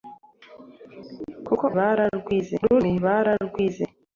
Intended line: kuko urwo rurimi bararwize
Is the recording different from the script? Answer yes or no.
yes